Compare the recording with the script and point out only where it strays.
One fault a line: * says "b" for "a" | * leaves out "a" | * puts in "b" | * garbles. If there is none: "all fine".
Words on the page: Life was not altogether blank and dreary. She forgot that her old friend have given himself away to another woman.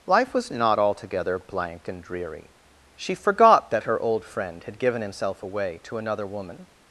* says "had" for "have"